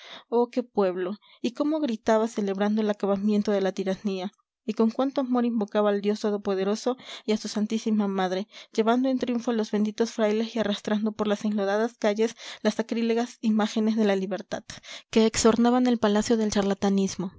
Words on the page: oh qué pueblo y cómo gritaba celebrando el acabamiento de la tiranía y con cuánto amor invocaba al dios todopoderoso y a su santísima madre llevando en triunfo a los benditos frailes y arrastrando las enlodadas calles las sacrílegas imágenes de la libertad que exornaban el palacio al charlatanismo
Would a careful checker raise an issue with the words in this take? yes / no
yes